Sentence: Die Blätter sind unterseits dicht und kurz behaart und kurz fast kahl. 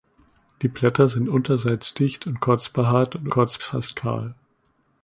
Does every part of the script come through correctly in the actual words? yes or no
yes